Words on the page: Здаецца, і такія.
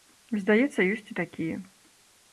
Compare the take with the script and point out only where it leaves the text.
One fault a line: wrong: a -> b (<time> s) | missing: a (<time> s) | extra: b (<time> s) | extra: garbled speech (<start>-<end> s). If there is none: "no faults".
extra: ёсць (0.9 s)